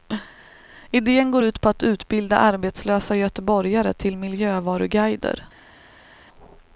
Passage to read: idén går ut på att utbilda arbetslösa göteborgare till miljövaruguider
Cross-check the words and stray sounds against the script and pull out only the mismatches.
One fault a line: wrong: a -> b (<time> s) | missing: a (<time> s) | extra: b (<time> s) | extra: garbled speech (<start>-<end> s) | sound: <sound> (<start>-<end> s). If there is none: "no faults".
no faults